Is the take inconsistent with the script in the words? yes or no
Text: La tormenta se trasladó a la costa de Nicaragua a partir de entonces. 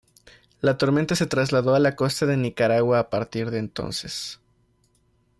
no